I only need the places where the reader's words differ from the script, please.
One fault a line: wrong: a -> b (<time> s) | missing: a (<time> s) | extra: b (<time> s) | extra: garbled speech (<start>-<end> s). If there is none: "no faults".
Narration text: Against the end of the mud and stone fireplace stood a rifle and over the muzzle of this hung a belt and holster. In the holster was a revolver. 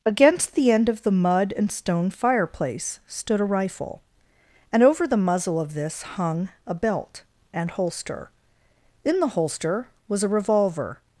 no faults